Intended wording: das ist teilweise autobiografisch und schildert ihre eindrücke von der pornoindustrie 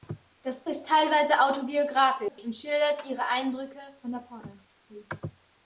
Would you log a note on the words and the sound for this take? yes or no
yes